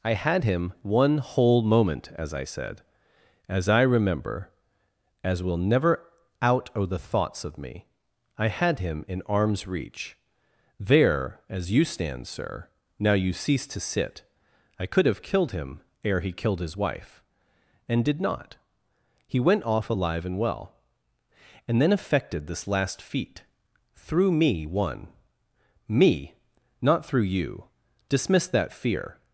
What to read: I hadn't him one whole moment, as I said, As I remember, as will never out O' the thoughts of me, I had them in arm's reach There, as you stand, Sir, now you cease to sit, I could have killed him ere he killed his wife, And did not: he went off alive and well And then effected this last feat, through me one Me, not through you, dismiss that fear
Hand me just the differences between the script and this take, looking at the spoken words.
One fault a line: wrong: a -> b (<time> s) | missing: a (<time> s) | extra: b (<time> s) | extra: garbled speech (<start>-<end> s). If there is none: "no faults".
wrong: hadn't -> had (0.1 s)
wrong: them -> him (8.8 s)